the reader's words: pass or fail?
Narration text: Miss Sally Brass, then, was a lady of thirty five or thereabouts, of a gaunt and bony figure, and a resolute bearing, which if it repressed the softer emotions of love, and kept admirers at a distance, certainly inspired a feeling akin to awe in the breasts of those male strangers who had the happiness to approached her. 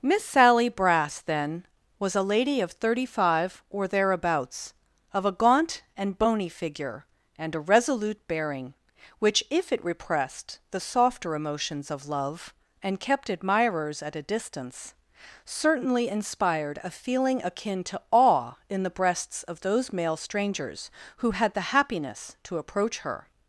fail